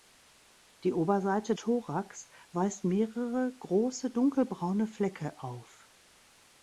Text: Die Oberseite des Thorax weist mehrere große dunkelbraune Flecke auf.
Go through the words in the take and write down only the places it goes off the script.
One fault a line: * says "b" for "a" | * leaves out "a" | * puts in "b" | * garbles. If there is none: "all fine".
* leaves out "des"